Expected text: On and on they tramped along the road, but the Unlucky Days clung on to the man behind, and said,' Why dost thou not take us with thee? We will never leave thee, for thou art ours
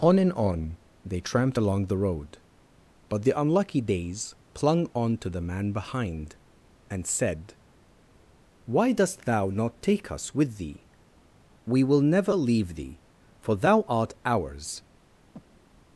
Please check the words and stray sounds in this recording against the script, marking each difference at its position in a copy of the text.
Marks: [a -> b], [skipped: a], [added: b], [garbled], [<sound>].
On and on they tramped along the road, but the Unlucky Days clung on to the man behind, and said,' Why dost thou not take us with thee? We will never leave thee, for thou art ours [breath]